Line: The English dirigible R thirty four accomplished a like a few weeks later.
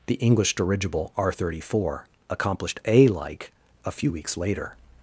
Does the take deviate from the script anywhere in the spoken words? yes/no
no